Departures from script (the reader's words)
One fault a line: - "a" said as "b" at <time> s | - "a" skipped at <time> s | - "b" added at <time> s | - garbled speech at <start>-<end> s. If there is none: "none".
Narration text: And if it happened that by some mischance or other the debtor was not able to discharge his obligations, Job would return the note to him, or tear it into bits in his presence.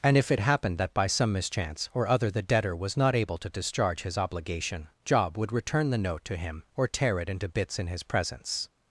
- "obligations" said as "obligation" at 4.2 s